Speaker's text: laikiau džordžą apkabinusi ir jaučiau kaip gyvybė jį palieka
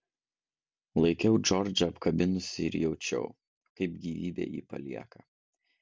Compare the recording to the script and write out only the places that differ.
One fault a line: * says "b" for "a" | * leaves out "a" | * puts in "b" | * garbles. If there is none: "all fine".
all fine